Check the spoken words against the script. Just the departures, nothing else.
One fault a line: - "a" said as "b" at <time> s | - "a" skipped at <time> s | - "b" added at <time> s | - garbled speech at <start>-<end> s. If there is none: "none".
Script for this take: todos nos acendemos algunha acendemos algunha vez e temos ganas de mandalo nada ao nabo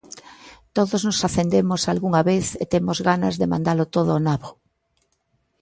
- "acendemos algunha" skipped at 2.2 s
- "nada" said as "todo" at 3.9 s